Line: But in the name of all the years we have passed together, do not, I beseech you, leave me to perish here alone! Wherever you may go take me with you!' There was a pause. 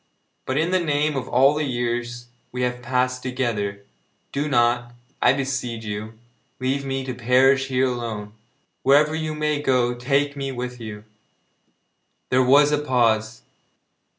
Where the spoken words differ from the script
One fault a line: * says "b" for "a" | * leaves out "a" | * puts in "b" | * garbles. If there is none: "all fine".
all fine